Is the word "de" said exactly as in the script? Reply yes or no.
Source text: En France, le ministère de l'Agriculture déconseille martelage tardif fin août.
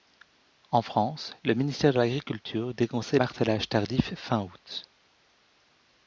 yes